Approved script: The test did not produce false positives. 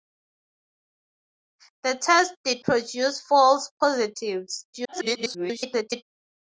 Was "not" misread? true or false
true